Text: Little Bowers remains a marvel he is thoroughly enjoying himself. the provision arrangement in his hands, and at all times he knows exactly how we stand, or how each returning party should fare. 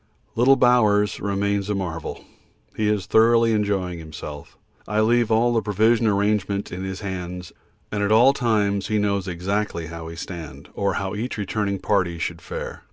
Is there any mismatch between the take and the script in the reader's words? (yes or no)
yes